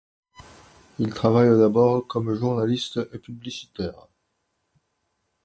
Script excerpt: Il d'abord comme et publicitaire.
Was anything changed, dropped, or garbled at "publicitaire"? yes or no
no